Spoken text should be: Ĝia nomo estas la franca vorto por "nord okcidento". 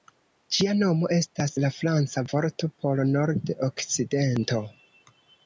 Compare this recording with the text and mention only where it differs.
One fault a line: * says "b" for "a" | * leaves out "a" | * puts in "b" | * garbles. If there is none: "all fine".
all fine